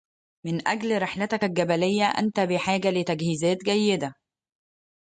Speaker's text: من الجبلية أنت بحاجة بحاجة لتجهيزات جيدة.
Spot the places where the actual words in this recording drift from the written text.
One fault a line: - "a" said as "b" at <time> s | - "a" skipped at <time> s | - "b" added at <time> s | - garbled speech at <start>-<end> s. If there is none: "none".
- "أجل رحلتك" added at 0.7 s
- "بحاجة" skipped at 2.9 s